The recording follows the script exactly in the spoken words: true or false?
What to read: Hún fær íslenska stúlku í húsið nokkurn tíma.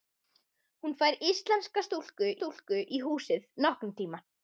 false